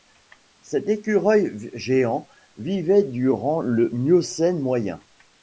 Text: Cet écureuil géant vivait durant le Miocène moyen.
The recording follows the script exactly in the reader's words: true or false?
true